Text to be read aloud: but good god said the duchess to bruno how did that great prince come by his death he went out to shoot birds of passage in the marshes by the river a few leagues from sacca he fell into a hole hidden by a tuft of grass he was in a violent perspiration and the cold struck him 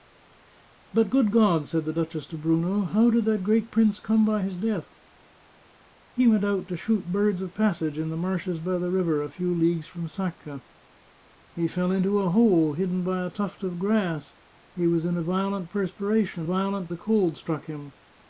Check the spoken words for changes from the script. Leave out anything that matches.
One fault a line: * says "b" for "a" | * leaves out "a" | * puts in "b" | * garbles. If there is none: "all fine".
* says "violent" for "and"